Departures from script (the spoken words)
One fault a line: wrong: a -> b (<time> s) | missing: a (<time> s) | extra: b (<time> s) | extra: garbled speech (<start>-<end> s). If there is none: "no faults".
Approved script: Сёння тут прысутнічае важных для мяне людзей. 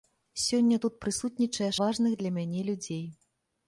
no faults